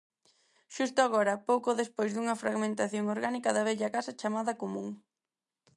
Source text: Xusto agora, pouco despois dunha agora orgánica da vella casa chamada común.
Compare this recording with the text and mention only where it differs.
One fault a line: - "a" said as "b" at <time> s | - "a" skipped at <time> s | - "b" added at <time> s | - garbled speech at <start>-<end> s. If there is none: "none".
- "agora" said as "fragmentación" at 2.4 s